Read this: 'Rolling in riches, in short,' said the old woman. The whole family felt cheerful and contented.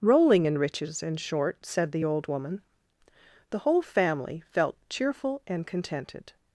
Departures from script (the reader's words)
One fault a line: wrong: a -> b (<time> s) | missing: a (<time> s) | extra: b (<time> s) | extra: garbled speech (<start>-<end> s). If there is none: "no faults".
no faults